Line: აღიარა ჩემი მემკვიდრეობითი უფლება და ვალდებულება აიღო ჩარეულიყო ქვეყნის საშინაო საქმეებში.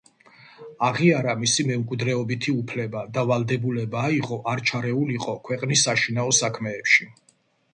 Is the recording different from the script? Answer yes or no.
yes